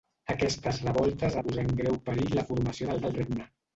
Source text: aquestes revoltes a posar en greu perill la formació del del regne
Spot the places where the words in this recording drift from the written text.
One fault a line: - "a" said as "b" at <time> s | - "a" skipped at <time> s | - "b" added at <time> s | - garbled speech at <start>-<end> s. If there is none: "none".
none